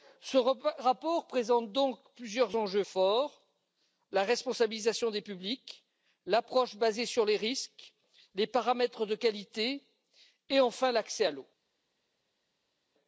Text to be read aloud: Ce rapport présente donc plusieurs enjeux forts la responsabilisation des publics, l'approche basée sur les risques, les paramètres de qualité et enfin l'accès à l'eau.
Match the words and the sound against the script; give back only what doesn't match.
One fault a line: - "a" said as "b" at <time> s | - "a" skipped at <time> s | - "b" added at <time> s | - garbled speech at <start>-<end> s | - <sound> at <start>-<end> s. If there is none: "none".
none